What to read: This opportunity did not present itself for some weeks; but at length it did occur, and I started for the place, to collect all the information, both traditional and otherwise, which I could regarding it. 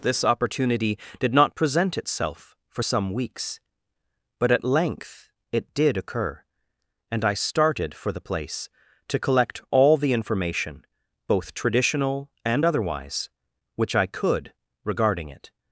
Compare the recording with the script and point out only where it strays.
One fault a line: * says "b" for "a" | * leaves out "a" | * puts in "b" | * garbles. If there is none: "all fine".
all fine